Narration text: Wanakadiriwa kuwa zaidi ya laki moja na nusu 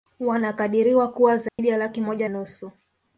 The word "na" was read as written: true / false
false